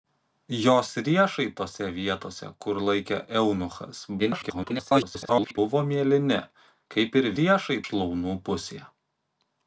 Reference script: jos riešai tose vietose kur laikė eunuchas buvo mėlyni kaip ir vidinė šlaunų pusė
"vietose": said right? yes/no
yes